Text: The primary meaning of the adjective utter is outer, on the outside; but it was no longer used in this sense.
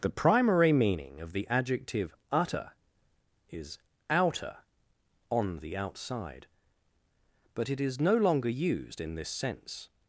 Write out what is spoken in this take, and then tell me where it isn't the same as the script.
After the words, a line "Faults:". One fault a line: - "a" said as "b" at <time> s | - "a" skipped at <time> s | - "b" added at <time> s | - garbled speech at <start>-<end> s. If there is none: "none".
The primary meaning of the adjective utter is outer, on the outside; but it is no longer used in this sense.
Faults:
- "was" said as "is" at 7.8 s